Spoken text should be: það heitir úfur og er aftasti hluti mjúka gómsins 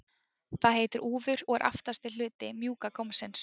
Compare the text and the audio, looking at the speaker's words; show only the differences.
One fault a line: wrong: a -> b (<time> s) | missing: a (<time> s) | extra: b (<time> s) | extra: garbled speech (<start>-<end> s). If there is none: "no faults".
no faults